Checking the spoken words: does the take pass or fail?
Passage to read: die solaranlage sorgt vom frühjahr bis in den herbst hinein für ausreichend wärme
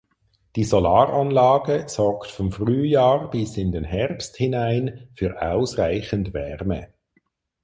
pass